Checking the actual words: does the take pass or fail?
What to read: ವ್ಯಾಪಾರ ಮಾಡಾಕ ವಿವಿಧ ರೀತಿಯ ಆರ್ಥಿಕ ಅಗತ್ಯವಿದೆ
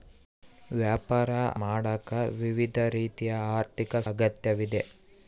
pass